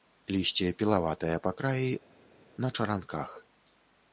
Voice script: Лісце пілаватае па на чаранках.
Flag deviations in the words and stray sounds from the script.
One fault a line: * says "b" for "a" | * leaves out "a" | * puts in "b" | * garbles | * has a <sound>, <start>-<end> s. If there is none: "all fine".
* puts in "краі"